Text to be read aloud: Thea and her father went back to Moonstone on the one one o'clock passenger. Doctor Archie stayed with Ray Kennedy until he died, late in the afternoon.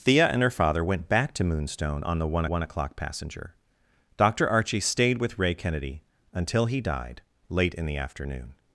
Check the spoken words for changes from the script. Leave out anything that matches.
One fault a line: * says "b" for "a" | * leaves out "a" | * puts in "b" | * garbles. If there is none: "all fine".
all fine